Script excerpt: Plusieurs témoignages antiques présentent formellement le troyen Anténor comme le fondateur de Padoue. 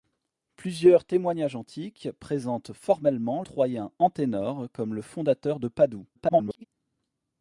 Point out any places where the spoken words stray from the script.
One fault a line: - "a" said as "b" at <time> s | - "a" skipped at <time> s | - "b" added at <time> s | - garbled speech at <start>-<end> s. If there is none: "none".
- "le" skipped at 3.4 s
- garbled speech at 6.1-6.7 s